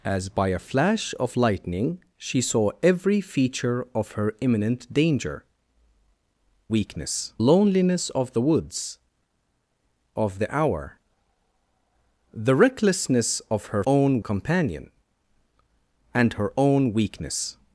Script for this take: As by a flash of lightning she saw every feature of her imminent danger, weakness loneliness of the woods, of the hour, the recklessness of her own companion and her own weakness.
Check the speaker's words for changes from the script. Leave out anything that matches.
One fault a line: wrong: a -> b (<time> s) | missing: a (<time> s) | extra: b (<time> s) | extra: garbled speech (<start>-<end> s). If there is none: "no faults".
no faults